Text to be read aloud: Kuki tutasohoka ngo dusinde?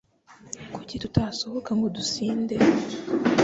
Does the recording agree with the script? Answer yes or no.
yes